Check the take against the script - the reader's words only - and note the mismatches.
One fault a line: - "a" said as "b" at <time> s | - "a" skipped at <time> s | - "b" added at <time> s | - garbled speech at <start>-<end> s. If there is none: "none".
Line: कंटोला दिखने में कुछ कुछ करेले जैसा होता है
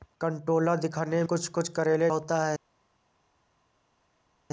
- "में" skipped at 1.2 s
- "जैसा" skipped at 2.1 s